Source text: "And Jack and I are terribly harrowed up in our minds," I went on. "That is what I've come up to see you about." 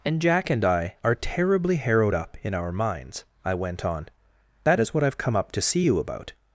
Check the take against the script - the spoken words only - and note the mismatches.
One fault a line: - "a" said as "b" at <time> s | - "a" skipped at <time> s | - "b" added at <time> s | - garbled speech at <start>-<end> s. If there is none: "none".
none